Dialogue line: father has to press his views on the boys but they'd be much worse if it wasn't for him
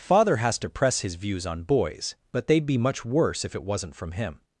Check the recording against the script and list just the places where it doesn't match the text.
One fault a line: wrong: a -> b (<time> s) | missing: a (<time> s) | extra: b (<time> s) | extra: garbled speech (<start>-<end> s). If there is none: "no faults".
missing: the (1.6 s)
wrong: for -> from (4.0 s)